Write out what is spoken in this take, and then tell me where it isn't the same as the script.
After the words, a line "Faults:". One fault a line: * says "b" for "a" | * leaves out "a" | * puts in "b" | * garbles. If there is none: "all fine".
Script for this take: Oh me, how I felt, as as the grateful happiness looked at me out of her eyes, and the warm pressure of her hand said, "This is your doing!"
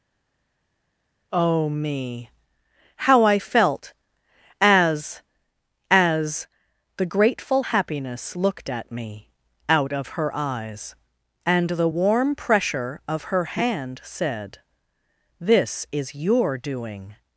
Oh me, how I felt, as as the grateful happiness looked at me out of her eyes, and the warm pressure of her hand said, "This is your doing!"
Faults:
all fine